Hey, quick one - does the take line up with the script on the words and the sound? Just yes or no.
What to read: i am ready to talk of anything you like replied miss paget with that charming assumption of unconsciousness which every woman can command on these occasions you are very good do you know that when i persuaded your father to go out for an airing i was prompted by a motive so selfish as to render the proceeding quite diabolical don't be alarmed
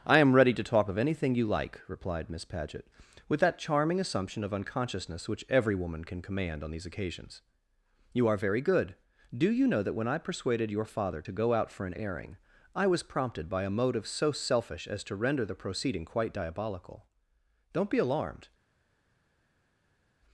yes